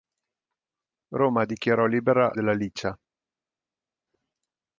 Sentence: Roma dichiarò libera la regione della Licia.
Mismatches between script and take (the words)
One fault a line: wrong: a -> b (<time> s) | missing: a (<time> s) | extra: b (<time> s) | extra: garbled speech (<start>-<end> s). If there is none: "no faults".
missing: la regione (2.3 s)